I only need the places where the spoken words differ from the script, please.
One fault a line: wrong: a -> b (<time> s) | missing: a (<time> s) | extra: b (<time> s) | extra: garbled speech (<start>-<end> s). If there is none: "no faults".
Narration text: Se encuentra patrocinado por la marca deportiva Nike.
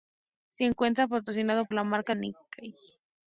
missing: por (1.6 s)
missing: deportiva (2.1 s)